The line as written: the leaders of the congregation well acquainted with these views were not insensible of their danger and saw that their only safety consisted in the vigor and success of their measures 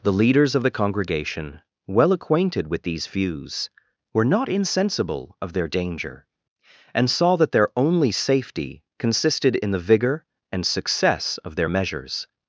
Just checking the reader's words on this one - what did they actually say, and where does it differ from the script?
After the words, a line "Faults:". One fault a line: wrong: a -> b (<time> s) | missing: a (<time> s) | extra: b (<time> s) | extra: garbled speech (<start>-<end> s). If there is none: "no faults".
the leaders of the congregation well acquainted with these views were not insensible of their danger and saw that their only safety consisted in the vigor and success of their measures
Faults:
no faults